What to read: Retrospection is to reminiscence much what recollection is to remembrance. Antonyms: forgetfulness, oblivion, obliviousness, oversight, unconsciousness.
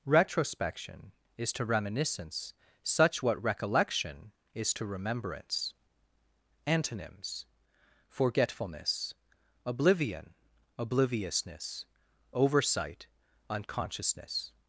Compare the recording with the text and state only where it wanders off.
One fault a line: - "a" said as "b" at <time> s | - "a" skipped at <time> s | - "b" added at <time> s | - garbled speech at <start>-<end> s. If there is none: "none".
- "much" said as "such" at 2.8 s